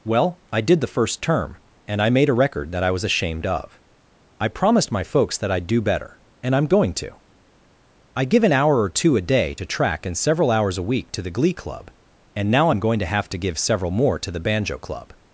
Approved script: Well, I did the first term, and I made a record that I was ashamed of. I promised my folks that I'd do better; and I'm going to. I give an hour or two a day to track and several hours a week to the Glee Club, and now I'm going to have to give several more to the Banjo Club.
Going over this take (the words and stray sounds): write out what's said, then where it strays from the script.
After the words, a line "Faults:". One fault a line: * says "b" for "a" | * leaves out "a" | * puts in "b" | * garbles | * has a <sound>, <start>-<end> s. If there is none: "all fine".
Well, I did the first term, and I made a record that I was ashamed of. I promised my folks that I'd do better; and I'm going to. I give an hour or two a day to track and several hours a week to the Glee Club, and now I'm going to have to give several more to the Banjo Club.
Faults:
all fine